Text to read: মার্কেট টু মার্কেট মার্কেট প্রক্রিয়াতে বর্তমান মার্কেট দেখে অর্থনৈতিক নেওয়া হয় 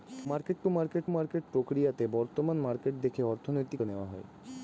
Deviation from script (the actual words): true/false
false